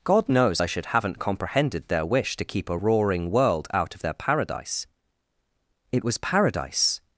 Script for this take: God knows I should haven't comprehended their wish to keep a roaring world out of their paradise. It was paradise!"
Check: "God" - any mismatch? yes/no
no